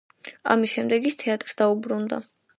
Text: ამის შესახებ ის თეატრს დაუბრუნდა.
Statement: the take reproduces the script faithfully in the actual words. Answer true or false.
false